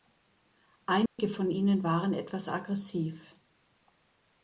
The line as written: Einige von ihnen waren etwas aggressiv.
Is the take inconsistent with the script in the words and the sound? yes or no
yes